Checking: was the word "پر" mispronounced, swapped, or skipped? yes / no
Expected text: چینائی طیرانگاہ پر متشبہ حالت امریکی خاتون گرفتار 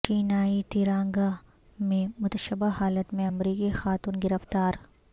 yes